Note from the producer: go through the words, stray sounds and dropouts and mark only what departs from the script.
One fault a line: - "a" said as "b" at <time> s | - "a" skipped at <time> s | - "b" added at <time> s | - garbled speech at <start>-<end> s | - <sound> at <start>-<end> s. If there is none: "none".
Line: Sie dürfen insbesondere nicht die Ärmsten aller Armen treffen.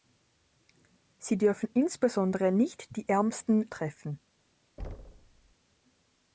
- "aller Armen" skipped at 3.7 s
- thud at 4.8-5.5 s